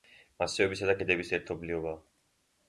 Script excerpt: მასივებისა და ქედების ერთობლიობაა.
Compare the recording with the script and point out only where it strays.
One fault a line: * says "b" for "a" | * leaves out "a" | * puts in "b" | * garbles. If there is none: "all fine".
all fine